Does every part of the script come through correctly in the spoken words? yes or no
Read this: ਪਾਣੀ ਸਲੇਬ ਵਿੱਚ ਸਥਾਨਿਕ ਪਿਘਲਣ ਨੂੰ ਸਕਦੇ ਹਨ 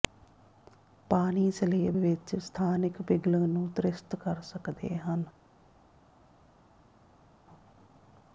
no